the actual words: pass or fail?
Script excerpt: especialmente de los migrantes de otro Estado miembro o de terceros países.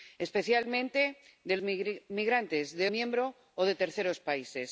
fail